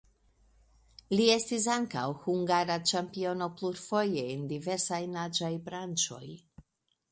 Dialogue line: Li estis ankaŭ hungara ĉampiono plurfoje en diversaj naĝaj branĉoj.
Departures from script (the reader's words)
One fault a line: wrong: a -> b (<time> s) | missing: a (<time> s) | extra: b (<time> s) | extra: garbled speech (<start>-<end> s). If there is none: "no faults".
no faults